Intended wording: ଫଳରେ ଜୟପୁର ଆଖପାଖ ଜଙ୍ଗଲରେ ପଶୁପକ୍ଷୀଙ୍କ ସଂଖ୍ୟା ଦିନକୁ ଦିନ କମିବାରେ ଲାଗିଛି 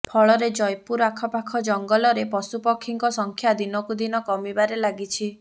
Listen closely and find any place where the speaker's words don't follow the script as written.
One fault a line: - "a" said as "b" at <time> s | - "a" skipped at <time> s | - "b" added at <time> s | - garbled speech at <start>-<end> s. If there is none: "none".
none